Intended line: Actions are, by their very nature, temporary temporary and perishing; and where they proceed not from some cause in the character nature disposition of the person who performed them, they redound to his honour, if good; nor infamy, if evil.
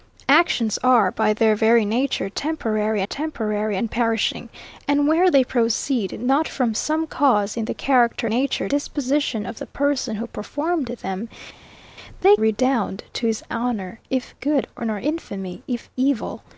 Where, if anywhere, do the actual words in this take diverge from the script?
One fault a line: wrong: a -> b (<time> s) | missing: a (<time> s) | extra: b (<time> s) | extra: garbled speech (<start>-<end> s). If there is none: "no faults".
no faults